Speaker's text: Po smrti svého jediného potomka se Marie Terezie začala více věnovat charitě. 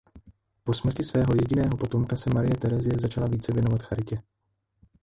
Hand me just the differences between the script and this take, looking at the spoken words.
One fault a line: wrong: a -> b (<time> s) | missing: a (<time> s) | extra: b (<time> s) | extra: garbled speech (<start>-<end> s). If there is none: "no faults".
no faults